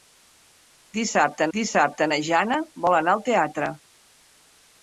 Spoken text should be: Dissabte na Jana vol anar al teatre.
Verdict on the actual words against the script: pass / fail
fail